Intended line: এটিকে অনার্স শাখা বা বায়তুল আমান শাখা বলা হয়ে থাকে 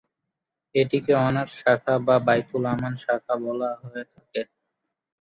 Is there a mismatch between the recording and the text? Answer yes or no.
no